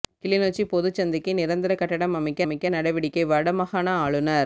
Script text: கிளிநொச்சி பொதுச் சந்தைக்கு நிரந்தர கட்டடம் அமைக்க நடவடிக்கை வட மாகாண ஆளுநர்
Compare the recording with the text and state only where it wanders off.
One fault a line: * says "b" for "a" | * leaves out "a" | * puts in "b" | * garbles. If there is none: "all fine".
* puts in "அமைக்க"